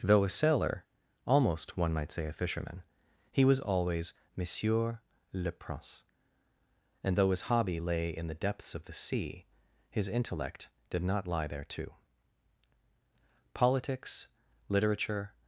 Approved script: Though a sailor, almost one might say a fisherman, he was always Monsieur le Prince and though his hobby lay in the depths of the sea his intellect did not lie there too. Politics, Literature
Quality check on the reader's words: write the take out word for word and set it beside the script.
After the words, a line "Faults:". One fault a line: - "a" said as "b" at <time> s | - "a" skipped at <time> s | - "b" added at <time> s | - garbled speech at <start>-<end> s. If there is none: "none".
Though a sailor, almost one might say a fisherman, he was always Monsieur le Prince and though his hobby lay in the depths of the sea his intellect did not lie there too. Politics, Literature
Faults:
none